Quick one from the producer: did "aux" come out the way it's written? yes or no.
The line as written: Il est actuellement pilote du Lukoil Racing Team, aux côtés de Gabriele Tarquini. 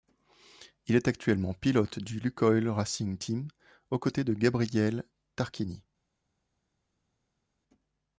yes